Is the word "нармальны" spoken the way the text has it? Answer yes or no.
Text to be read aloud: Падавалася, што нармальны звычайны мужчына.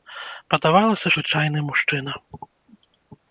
no